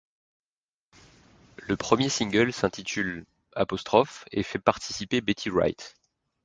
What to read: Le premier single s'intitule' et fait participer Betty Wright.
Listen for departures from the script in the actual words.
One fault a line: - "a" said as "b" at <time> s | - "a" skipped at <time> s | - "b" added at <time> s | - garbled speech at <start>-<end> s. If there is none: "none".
none